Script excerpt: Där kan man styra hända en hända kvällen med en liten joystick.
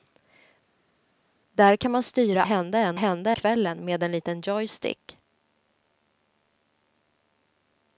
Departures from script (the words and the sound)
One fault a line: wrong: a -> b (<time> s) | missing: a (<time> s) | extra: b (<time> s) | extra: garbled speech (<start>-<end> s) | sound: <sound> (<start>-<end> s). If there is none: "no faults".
no faults